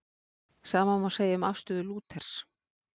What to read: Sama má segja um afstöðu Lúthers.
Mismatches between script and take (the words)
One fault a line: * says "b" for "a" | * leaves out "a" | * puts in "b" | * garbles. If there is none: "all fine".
all fine